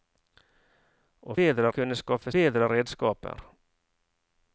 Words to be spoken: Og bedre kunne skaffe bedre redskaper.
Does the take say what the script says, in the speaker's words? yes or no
yes